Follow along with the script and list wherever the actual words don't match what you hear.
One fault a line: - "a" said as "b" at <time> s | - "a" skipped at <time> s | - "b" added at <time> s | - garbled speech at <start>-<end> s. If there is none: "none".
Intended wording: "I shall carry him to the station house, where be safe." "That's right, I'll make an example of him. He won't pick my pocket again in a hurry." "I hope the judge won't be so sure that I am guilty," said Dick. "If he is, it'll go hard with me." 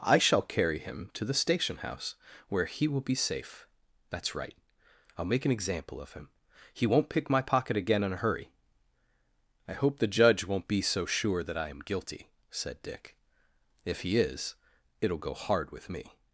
- "he will" added at 2.6 s